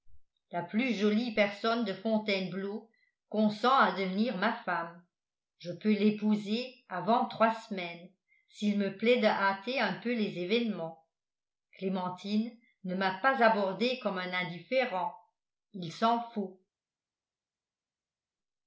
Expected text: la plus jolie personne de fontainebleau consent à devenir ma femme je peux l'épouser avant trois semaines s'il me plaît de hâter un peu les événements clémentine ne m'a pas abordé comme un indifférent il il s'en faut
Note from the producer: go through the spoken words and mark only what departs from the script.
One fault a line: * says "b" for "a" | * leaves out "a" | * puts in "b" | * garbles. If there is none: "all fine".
* leaves out "il"